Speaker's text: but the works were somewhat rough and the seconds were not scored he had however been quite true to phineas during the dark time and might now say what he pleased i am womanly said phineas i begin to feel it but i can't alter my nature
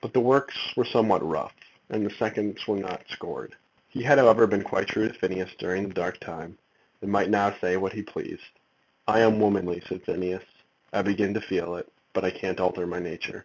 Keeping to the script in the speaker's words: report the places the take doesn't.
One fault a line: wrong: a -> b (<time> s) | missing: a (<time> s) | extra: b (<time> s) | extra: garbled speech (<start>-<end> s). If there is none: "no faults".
no faults